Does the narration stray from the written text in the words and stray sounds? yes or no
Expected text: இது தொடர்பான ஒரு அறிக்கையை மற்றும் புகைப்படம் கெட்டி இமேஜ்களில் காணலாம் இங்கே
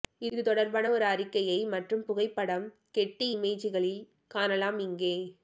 no